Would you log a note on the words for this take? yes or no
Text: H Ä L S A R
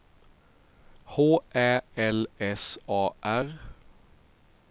no